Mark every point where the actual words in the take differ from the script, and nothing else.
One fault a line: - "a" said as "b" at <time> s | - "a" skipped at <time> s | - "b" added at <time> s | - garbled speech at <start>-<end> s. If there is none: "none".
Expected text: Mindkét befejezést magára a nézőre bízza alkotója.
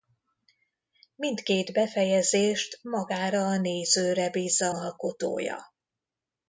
none